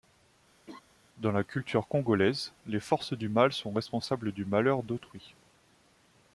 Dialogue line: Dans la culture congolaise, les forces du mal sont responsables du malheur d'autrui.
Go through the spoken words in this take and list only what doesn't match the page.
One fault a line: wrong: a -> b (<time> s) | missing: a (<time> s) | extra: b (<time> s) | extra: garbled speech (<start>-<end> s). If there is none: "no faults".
no faults